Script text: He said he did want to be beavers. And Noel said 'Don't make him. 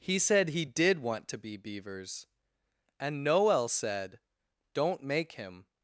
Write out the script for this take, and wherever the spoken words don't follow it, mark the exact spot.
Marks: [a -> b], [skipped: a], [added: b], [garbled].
He said he did want to be beavers. And Noel said 'Don't make him.